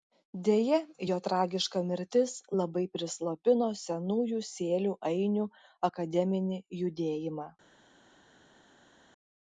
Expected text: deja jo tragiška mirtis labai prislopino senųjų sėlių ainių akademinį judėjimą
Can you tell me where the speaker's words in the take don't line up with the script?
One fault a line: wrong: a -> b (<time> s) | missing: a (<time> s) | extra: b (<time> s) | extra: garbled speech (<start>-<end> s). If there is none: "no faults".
no faults